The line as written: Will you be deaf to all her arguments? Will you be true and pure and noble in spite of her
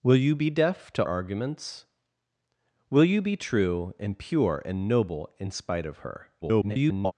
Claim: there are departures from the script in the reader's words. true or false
true